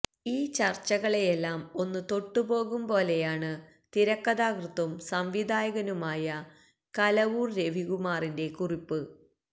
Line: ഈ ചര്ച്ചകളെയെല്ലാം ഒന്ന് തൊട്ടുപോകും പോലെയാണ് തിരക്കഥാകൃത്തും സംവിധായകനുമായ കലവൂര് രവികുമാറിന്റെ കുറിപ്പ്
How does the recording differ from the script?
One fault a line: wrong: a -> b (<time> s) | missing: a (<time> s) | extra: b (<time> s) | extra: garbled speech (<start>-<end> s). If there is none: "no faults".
no faults